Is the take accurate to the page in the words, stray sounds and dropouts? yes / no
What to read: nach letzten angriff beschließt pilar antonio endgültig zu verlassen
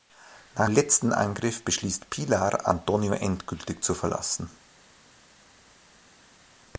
yes